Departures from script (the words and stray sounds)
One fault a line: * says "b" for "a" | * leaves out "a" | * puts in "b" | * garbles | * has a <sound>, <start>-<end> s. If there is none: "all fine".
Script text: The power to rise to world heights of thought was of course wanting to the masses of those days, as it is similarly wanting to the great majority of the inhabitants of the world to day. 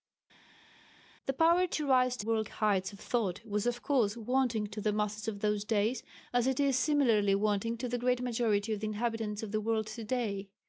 all fine